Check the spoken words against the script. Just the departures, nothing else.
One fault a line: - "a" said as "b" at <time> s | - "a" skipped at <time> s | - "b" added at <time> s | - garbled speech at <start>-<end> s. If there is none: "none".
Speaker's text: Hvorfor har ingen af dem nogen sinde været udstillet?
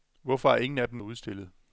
- "nogen sinde været" skipped at 1.0 s